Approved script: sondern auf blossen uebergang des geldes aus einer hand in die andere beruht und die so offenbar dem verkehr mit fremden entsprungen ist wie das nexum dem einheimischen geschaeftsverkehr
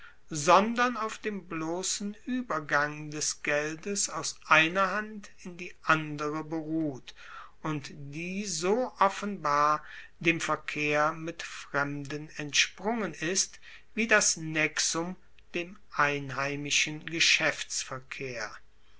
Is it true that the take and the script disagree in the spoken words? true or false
true